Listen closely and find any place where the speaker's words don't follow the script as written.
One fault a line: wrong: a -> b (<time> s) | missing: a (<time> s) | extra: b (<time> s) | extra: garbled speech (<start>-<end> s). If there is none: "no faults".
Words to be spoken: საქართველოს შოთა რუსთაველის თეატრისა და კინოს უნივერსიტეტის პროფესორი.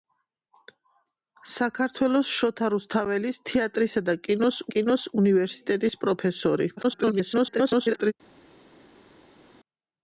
extra: კინოს (4.8 s)
extra: garbled speech (6.8-8.1 s)